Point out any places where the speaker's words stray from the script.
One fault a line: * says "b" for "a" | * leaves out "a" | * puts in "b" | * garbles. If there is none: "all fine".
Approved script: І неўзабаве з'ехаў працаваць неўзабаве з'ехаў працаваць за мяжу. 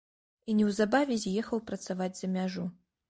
* leaves out "неўзабаве з'ехаў працаваць"